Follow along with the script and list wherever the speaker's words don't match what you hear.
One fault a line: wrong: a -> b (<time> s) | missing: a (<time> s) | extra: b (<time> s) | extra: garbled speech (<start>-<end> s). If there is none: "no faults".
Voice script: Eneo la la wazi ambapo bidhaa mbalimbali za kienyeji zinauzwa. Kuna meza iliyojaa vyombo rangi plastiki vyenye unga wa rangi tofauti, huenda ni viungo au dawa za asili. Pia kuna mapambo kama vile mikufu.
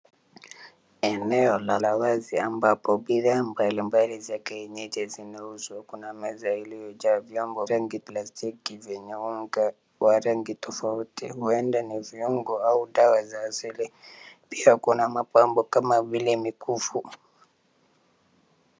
no faults